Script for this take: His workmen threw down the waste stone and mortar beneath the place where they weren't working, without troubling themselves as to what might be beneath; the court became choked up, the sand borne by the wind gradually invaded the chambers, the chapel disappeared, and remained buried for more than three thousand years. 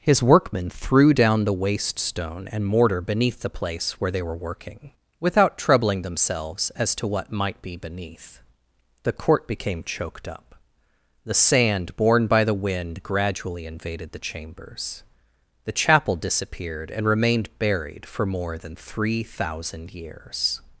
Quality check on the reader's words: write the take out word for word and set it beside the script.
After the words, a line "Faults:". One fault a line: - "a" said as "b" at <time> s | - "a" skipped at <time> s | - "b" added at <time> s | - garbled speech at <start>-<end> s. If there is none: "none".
His workmen threw down the waste stone and mortar beneath the place where they were working, without troubling themselves as to what might be beneath; the court became choked up, the sand borne by the wind gradually invaded the chambers, the chapel disappeared, and remained buried for more than three thousand years.
Faults:
- "weren't" said as "were" at 4.2 s